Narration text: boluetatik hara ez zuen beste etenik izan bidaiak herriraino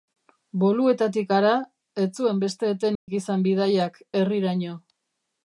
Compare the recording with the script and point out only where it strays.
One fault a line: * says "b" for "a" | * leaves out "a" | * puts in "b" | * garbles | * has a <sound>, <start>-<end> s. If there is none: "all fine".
* has a dropout, 3.0-3.1 s